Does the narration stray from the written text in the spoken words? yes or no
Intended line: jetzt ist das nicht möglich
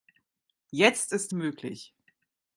yes